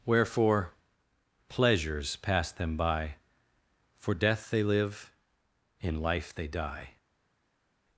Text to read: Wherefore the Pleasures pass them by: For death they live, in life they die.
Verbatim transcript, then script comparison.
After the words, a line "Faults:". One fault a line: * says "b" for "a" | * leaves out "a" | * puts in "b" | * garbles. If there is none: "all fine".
Wherefore Pleasures pass them by: For death they live, in life they die.
Faults:
* leaves out "the"